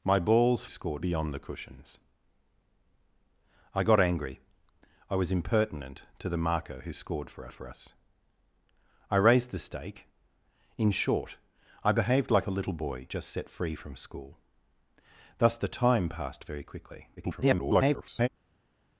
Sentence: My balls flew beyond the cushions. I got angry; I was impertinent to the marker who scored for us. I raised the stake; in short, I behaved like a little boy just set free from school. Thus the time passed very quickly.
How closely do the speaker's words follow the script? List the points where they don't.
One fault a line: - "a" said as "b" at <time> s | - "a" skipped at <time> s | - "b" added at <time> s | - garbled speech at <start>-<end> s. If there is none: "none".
- "flew" said as "scored" at 0.7 s
- "for" added at 7.5 s
- garbled speech at 17.2-18.3 s